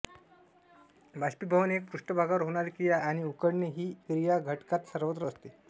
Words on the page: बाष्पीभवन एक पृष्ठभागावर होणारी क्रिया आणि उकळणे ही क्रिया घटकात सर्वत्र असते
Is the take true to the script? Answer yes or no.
yes